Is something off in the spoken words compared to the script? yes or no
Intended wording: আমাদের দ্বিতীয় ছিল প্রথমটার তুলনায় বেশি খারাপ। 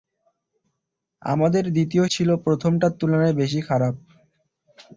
no